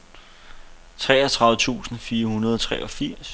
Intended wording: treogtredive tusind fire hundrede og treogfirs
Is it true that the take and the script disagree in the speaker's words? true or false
false